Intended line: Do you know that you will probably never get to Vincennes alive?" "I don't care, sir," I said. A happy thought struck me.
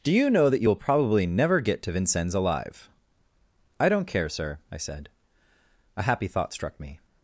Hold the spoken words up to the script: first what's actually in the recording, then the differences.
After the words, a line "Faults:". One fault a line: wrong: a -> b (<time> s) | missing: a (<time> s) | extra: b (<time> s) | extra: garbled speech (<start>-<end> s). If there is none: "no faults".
Do you know that you will probably never get to Vincennes alive?" "I don't care, sir," I said. A happy thought struck me.
Faults:
no faults